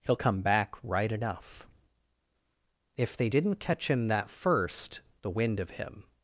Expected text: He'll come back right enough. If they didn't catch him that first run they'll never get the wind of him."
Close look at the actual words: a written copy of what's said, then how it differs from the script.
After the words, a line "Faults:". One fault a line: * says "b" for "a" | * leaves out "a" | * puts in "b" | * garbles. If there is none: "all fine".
He'll come back right enough. If they didn't catch him that first the wind of him."
Faults:
* leaves out "run they'll never get"